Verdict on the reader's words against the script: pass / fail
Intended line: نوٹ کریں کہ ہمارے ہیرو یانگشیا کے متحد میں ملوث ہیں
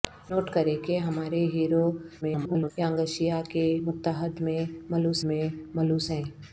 fail